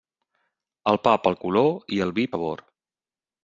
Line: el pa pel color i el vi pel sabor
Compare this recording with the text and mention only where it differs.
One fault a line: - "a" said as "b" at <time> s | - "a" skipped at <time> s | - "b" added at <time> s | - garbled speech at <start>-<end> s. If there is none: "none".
- "pel" skipped at 2.3 s